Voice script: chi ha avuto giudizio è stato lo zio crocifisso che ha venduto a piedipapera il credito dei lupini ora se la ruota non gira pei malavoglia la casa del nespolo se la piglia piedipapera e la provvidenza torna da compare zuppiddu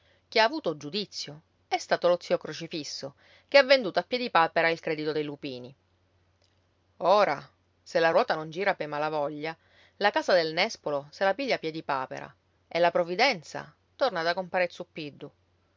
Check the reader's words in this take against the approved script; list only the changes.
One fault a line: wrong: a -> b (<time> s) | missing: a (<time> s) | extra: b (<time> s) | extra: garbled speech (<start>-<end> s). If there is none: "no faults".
no faults